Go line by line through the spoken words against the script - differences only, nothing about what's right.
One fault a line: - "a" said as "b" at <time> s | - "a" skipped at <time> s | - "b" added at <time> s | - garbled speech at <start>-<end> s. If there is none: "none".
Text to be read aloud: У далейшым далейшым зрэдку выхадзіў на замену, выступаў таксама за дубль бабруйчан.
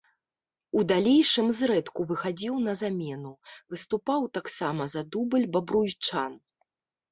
- "далейшым" skipped at 1.5 s